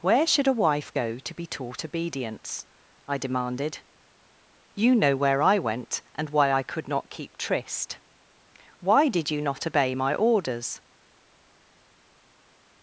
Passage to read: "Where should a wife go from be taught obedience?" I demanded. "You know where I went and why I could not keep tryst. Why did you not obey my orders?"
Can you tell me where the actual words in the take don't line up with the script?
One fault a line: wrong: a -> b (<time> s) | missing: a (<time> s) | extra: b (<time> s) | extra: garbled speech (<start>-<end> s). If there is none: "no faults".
wrong: from -> to (1.2 s)